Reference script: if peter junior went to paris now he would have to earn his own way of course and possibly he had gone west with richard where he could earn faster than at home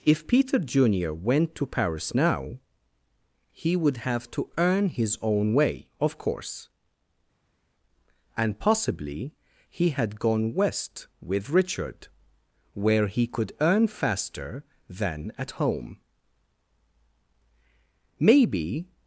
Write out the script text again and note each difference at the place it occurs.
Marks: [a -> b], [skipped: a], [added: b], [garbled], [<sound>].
if peter junior went to paris now he would have to earn his own way of course and possibly he had gone west with richard where he could earn faster than at home [added: maybe]